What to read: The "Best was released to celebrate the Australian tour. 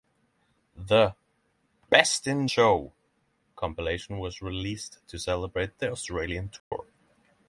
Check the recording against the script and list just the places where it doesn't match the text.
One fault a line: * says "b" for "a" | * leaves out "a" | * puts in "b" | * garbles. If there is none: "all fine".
* puts in "in Show compilation"